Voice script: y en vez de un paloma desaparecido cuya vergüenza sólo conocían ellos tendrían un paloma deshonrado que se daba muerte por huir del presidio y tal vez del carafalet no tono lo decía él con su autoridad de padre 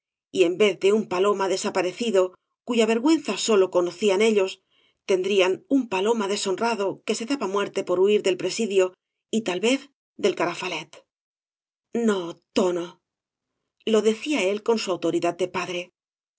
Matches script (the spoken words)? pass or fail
pass